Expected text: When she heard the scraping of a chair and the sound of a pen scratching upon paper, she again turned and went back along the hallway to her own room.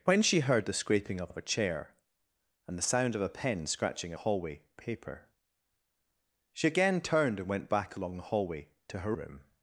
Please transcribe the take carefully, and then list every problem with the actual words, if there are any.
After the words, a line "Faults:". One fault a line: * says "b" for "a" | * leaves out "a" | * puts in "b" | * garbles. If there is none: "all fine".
When she heard the scraping of of a chair and the sound of a pen scratching hallway paper, she again turned and went back along the hallway to her room.
Faults:
* puts in "of"
* says "hallway" for "upon"
* leaves out "own"